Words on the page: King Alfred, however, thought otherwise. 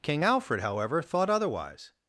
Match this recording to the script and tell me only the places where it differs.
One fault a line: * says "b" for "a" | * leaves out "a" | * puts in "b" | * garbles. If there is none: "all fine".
all fine